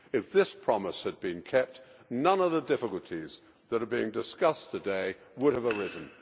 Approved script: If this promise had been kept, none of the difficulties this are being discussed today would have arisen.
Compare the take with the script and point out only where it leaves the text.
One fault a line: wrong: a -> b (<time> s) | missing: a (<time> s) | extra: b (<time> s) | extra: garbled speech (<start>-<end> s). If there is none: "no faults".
wrong: this -> that (3.7 s)